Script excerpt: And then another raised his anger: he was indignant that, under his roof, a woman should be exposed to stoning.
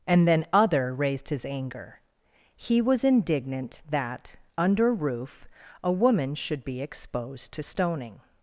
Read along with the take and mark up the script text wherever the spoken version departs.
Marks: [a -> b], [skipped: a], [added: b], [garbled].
And then [another -> other] raised his anger: he was indignant that, under [skipped: his] roof, a woman should be exposed to stoning.